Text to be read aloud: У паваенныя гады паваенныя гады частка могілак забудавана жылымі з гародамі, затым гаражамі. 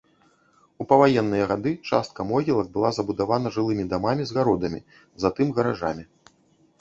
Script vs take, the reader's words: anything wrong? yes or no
yes